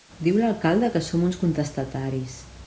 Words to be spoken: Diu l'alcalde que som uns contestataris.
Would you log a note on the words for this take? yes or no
no